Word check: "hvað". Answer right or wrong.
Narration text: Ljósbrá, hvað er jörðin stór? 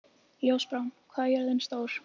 right